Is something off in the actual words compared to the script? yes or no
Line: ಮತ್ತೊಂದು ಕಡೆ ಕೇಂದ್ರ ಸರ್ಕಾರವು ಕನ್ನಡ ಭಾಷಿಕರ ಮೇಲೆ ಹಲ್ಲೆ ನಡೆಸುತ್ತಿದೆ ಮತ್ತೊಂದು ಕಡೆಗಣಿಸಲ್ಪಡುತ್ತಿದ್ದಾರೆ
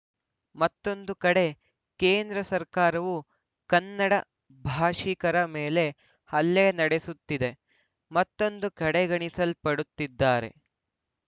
no